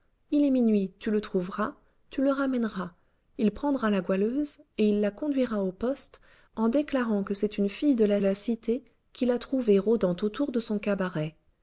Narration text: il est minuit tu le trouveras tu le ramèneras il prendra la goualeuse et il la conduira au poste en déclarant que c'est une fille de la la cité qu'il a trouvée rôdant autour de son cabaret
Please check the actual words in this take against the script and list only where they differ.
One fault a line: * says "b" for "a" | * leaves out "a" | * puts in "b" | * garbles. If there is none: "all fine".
all fine